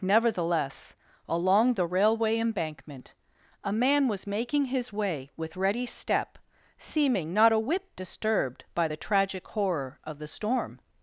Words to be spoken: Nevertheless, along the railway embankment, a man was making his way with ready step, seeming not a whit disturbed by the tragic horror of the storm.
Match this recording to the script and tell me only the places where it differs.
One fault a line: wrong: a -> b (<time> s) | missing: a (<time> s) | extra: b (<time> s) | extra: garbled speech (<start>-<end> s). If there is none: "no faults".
no faults